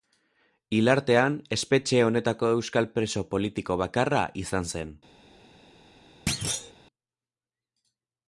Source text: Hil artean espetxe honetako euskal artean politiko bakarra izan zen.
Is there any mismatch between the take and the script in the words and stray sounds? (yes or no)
yes